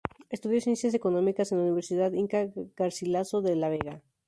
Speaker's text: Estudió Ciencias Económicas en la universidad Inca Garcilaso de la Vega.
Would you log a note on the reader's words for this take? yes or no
no